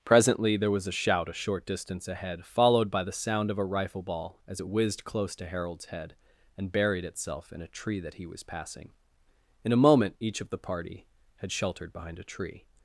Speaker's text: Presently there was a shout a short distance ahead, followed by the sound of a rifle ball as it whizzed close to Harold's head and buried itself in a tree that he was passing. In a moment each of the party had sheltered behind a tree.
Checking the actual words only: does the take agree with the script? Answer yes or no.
yes